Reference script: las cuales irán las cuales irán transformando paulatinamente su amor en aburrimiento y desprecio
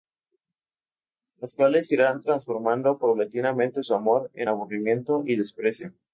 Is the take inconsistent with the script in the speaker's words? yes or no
yes